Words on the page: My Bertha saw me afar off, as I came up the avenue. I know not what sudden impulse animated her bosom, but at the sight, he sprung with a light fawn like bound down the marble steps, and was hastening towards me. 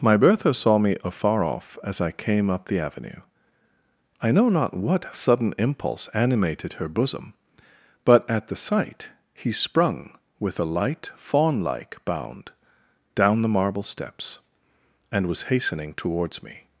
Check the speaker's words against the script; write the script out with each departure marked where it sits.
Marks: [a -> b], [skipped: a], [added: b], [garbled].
My Bertha saw me afar off, as I came up the avenue. I know not what sudden impulse animated her bosom, but at the sight, he sprung with a light fawn like bound down the marble steps, and was hastening towards me.